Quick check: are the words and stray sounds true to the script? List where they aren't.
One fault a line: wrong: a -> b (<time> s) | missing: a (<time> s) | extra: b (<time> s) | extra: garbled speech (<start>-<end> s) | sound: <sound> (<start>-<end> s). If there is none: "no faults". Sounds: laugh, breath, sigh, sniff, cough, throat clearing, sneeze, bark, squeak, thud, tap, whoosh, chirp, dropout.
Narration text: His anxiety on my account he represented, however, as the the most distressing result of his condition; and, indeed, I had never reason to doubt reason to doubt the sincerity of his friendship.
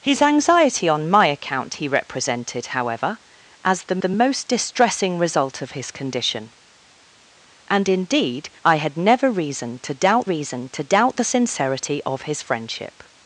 no faults